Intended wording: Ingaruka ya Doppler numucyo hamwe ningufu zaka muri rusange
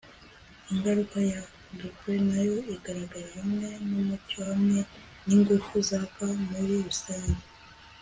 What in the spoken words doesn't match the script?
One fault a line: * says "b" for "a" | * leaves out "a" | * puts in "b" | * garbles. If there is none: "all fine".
* puts in "nayo igaragara hamwe"